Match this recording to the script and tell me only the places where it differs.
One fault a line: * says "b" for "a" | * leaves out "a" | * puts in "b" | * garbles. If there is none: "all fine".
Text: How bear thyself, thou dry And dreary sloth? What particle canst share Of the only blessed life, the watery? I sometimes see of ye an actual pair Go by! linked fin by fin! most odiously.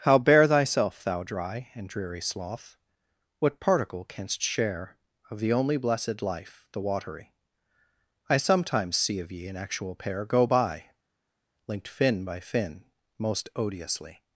all fine